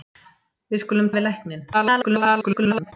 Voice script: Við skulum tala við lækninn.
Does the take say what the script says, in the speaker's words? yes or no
no